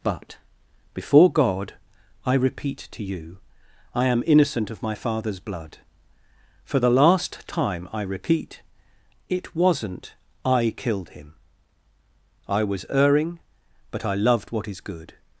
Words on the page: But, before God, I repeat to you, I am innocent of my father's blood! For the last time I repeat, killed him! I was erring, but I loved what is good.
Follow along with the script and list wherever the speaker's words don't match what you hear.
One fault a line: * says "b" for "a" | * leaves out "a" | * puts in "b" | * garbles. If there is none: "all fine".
* puts in "it wasn't I"